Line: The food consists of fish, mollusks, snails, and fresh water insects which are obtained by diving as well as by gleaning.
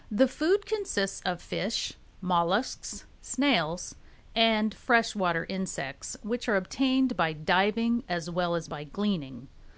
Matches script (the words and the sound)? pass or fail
pass